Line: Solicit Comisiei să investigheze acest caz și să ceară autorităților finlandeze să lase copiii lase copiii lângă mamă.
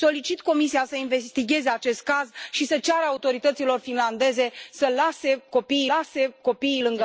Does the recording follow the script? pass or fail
pass